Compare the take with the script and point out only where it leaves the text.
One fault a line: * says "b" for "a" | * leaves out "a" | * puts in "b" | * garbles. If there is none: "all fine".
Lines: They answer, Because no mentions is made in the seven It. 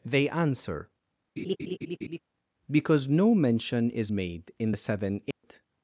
* says "mention" for "mentions"